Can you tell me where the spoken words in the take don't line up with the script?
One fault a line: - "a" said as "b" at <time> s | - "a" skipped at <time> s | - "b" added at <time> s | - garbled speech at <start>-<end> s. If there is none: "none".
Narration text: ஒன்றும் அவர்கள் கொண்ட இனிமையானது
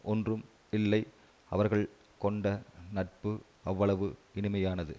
- "இல்லை" added at 0.7 s
- "நட்பு அவ்வளவு" added at 2.9 s